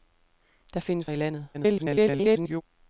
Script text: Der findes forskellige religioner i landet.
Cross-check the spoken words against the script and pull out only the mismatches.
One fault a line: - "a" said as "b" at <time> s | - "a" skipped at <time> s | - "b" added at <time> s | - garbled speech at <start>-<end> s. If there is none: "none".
- "forskellige religioner" skipped at 1.1 s
- garbled speech at 1.5-2.6 s